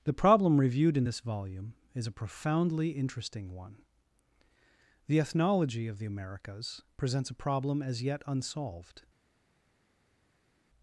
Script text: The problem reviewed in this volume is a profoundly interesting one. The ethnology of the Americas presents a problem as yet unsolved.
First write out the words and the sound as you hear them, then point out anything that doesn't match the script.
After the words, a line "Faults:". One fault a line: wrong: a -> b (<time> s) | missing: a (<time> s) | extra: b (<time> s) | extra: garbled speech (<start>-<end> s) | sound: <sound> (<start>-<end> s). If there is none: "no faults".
The problem reviewed in this volume is a profoundly interesting one. The ethnology of the Americas presents a problem as yet unsolved.
Faults:
no faults